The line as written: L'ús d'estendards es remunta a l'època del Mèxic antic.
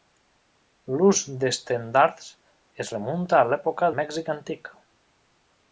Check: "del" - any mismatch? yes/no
yes